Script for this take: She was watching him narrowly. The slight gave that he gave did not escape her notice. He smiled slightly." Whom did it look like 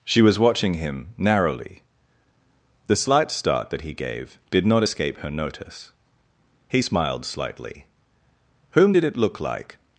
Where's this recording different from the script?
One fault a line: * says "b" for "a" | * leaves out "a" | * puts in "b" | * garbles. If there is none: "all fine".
* says "start" for "gave"